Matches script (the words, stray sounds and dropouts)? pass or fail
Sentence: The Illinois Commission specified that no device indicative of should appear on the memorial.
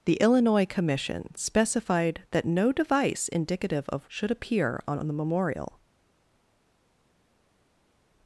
pass